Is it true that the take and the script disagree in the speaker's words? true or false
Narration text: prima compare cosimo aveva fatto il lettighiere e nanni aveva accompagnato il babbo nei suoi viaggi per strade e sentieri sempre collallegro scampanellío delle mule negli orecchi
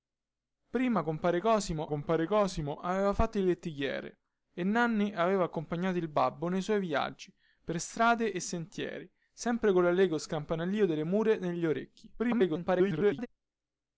true